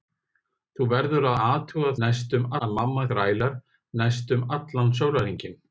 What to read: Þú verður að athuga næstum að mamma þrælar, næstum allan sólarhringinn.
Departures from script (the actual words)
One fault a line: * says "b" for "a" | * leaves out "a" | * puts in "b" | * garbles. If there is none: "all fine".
all fine